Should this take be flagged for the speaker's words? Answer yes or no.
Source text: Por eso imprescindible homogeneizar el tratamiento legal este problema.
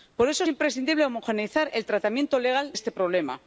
no